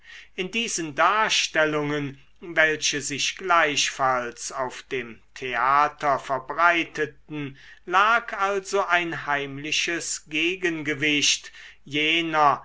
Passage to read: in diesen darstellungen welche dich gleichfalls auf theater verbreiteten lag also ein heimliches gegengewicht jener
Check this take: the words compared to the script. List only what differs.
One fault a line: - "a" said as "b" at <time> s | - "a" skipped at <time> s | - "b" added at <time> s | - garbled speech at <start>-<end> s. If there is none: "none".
- "dich" said as "sich" at 3.0 s
- "dem" added at 4.8 s